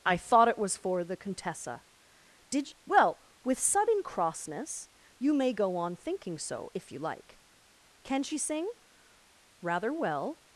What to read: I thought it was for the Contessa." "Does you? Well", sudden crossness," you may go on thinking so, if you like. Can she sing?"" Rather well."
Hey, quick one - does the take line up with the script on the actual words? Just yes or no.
no